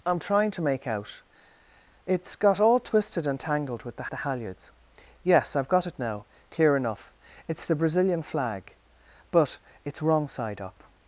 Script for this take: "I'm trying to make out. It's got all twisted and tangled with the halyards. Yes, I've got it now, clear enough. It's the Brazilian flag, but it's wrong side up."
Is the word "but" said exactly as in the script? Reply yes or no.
yes